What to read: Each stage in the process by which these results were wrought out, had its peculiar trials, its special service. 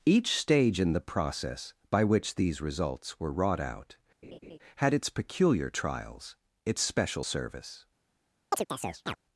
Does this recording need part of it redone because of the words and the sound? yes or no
yes